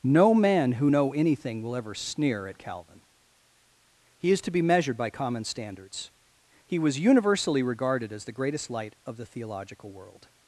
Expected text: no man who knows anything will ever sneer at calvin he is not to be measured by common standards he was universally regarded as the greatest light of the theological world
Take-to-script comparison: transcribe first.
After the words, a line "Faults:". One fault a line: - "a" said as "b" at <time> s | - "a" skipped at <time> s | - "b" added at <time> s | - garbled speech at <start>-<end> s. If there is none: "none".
no man who know anything will ever sneer at calvin he is to be measured by common standards he was universally regarded as the greatest light of the theological world
Faults:
- "knows" said as "know" at 0.9 s
- "not" skipped at 4.4 s